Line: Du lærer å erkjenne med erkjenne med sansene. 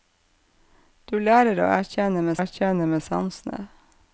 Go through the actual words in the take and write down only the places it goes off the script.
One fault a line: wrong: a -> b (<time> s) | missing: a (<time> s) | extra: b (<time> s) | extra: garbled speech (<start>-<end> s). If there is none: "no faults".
no faults